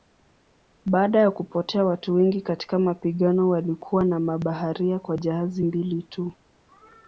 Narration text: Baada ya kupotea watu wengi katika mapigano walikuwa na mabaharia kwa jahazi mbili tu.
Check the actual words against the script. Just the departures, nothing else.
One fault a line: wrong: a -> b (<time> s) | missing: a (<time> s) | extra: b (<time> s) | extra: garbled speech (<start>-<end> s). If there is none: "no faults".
no faults